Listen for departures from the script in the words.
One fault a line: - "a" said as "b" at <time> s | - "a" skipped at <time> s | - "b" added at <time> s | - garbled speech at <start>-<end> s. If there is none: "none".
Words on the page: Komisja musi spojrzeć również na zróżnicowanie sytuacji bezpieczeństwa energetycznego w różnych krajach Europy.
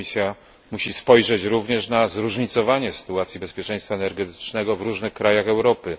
none